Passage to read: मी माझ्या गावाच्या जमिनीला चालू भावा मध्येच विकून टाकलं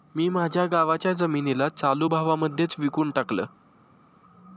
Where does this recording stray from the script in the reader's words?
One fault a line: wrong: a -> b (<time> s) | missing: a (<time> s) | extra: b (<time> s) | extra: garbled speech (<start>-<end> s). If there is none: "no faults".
no faults